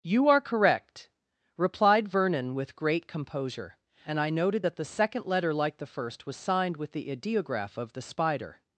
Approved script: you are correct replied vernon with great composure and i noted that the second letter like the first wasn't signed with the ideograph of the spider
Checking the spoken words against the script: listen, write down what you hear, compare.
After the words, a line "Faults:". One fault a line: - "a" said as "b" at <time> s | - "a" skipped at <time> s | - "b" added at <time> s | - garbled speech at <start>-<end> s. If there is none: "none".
you are correct replied vernon with great composure and i noted that the second letter like the first was signed with the ideograph of the spider
Faults:
- "wasn't" said as "was" at 6.2 s